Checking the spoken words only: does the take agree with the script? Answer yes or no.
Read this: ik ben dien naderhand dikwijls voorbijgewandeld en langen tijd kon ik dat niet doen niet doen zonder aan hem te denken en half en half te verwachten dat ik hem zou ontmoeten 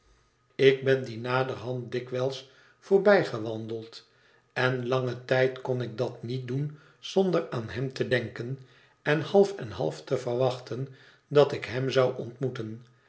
no